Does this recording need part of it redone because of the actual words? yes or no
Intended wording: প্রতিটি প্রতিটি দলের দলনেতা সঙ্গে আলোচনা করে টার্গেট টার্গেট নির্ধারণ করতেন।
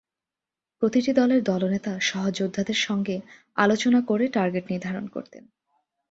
yes